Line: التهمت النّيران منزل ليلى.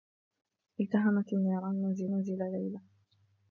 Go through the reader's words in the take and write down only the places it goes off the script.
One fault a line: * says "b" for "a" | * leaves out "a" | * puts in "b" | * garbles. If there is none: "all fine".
* puts in "منزل"